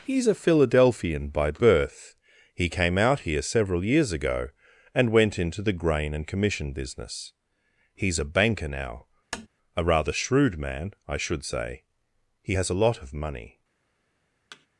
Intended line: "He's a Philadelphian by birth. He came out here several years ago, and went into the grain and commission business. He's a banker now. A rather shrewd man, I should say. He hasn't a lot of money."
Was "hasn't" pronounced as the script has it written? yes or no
no